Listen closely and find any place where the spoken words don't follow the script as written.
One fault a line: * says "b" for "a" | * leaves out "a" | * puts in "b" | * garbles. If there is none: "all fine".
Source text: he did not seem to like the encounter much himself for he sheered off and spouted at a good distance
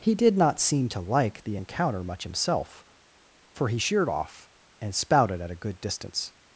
all fine